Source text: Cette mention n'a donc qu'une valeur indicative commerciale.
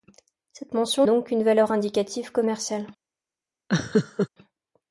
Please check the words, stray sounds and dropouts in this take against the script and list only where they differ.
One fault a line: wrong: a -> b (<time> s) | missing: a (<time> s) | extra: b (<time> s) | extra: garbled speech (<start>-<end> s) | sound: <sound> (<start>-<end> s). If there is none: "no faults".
missing: n'a (1.1 s)
sound: laugh (3.7-4.3 s)